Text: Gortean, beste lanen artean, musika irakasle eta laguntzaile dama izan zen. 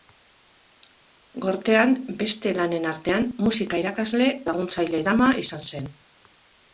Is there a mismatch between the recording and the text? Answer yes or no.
yes